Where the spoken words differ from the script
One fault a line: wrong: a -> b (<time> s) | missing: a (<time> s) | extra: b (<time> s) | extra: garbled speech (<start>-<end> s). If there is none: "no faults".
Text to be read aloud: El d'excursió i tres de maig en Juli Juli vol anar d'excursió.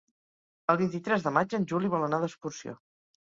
wrong: d'excursió -> vint (0.8 s)
missing: Juli (1.9 s)